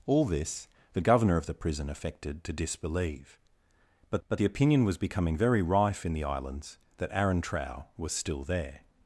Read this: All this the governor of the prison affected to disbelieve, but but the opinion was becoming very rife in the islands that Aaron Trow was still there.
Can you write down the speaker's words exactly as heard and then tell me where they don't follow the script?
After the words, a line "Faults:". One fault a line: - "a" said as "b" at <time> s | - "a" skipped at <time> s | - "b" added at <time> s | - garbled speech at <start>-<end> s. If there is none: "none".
All this the governor of the prison affected to disbelieve, but but the opinion was becoming very rife in the islands that Aaron Trow was still there.
Faults:
none